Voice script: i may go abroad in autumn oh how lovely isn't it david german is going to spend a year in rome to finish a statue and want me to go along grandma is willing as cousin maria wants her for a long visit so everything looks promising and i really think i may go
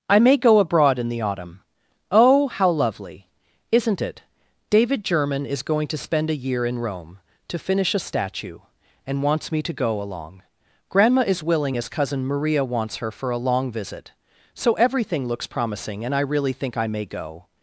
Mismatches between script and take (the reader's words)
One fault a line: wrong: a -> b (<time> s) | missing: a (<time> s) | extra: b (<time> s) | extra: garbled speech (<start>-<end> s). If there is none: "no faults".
extra: the (1.1 s)
wrong: want -> wants (9.2 s)